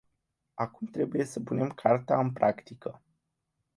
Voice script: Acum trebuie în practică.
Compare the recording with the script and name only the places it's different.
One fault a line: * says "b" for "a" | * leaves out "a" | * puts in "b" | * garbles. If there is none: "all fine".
* puts in "să punem carta"